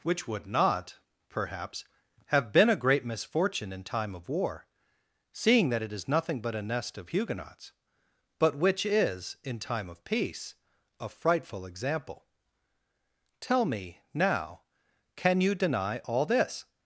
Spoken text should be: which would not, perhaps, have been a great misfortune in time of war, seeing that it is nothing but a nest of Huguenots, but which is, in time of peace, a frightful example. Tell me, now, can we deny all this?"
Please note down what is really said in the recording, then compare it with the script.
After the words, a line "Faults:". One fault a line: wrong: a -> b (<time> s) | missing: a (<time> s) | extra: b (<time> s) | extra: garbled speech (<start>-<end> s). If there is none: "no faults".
which would not, perhaps, have been a great misfortune in time of war, seeing that it is nothing but a nest of Huguenots, but which is, in time of peace, a frightful example. Tell me, now, can you deny all this?"
Faults:
wrong: we -> you (15.4 s)